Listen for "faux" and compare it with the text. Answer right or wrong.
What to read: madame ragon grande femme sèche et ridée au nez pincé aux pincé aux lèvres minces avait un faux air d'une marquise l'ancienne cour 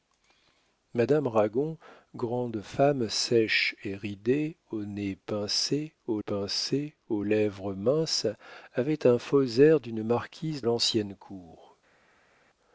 right